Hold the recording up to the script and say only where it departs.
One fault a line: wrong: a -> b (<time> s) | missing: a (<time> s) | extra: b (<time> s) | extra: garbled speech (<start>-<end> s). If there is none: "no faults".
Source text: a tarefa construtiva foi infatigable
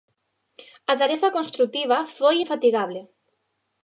no faults